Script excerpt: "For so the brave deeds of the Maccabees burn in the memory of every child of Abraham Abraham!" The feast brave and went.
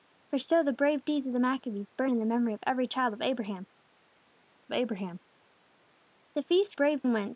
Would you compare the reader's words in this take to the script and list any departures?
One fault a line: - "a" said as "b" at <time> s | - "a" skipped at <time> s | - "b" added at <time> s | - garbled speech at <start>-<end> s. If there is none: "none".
none